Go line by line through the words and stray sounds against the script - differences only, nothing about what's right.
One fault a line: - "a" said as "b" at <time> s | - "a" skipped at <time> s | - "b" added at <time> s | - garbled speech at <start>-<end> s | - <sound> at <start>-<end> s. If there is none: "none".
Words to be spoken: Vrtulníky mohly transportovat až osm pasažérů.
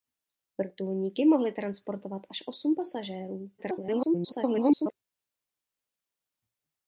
- garbled speech at 3.6-4.9 s